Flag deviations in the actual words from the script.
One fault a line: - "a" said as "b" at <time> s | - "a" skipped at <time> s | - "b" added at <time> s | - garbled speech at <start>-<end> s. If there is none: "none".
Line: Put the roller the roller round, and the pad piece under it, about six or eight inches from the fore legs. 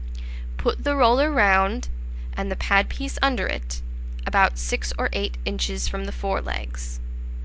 - "the roller" skipped at 1.3 s